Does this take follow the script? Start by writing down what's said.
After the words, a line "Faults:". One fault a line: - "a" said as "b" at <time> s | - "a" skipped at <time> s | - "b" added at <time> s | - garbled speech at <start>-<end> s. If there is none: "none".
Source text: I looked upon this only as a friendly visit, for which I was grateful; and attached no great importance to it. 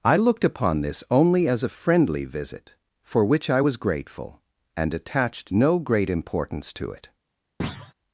I looked upon this only as a friendly visit, for which I was grateful; and attached no great importance to it.
Faults:
none